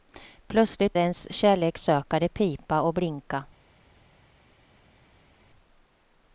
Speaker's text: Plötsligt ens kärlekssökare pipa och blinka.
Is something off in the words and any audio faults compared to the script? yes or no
no